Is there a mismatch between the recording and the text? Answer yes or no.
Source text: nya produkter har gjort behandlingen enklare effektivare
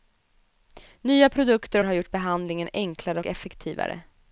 no